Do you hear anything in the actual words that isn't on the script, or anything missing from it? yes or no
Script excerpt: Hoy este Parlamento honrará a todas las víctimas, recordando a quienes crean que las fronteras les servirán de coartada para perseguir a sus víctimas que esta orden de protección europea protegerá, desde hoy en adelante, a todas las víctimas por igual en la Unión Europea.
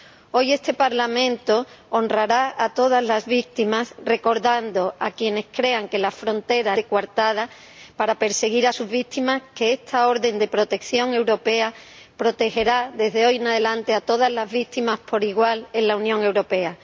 yes